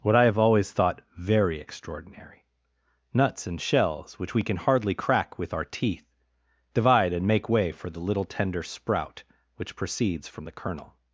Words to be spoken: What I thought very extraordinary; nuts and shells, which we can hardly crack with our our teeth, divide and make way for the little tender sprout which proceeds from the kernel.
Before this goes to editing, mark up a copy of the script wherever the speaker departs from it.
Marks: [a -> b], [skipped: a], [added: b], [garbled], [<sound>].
What I [added: have always] thought very extraordinary; nuts and shells, which we can hardly crack with our [skipped: our] teeth, divide and make way for the little tender sprout which proceeds from the kernel.